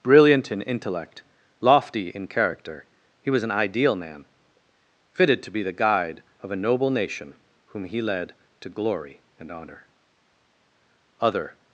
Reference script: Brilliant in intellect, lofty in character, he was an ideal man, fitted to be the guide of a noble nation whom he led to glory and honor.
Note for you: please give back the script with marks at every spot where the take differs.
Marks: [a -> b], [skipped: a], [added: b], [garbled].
Brilliant in intellect, lofty in character, he was an ideal man, fitted to be the guide of a noble nation whom he led to glory and honor. [added: Other]